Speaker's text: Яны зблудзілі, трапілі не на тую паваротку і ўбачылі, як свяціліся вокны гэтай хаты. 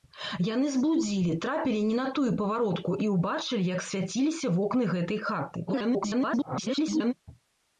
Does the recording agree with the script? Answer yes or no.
no